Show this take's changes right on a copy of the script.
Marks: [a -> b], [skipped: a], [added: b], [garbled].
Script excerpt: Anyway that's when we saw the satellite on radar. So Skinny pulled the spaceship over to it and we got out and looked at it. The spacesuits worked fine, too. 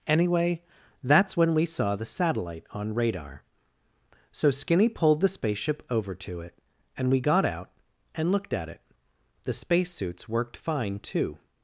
Anyway that's when we saw the satellite on radar. So Skinny pulled the spaceship over to it and we got out and looked at it. The spacesuits worked fine, too.